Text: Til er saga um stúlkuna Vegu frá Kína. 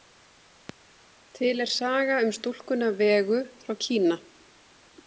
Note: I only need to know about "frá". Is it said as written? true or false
true